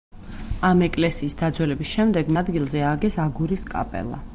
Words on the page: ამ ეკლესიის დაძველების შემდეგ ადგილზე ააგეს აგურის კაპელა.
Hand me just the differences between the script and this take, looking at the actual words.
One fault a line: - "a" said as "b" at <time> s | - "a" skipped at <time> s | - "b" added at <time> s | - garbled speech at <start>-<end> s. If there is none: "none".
none